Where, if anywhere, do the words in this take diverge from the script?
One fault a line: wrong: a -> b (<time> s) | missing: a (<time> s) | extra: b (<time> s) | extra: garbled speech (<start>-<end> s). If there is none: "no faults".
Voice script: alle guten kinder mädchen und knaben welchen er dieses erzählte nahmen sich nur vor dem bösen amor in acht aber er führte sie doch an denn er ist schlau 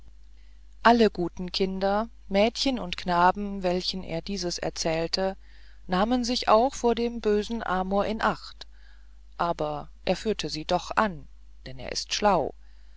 wrong: nur -> auch (6.5 s)